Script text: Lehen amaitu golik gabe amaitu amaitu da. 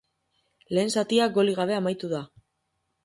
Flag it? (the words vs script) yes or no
yes